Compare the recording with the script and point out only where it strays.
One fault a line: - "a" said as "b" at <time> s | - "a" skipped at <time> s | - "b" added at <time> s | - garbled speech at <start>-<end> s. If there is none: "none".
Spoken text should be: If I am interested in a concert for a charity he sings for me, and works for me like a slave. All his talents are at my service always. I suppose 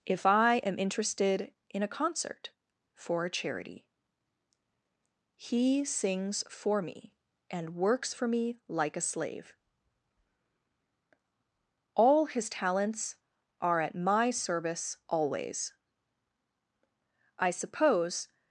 none